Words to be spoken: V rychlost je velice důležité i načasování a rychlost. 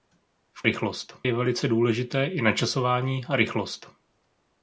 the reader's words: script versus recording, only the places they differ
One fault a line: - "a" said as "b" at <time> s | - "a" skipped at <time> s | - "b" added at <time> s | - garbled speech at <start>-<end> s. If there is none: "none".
none